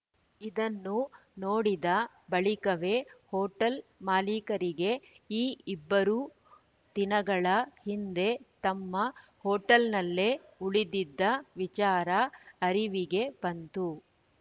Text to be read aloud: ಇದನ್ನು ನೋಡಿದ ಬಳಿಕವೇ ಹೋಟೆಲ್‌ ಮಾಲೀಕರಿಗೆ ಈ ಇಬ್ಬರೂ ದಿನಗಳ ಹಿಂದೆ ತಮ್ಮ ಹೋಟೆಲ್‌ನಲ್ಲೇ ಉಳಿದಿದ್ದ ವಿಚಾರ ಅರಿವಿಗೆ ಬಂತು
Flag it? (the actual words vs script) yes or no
no